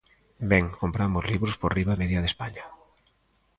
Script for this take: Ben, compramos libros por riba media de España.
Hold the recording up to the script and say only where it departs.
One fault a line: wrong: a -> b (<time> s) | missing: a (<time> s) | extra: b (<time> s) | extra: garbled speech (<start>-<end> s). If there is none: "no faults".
no faults